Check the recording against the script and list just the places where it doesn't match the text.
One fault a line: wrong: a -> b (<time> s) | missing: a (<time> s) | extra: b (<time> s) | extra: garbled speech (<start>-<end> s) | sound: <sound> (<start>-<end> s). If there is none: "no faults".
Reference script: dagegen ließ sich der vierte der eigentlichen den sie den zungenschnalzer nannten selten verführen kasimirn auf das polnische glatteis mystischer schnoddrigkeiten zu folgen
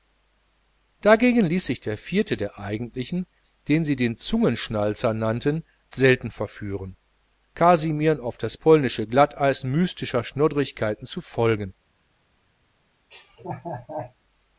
sound: laugh (13.1-14.1 s)